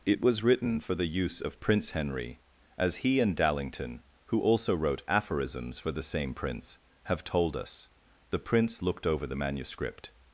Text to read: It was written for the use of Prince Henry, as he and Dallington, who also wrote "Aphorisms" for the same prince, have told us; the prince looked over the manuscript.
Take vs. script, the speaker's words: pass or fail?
pass